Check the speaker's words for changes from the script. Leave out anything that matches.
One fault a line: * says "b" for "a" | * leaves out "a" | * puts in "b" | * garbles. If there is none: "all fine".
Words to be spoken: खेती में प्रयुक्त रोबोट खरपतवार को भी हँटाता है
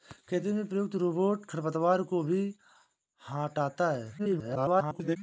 * garbles